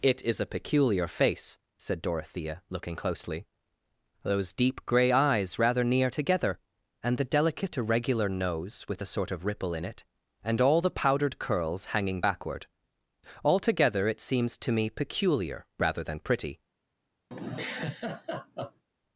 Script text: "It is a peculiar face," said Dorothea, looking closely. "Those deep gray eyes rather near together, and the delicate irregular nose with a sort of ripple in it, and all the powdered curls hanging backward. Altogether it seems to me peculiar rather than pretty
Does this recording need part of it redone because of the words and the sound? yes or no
yes